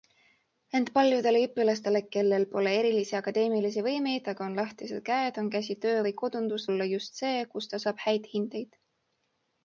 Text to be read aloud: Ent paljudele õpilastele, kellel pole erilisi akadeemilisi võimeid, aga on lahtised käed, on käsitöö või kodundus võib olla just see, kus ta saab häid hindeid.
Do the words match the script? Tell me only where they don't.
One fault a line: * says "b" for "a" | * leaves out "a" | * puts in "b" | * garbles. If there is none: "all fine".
* leaves out "võib"